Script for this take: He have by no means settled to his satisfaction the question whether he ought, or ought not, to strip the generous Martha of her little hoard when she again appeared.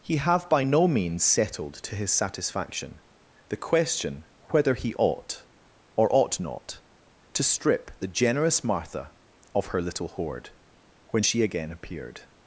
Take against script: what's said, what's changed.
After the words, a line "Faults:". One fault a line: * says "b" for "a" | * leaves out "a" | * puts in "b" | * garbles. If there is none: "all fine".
He have by no means settled to his satisfaction the question whether he ought, or ought not, to strip the generous Martha of her little hoard when she again appeared.
Faults:
all fine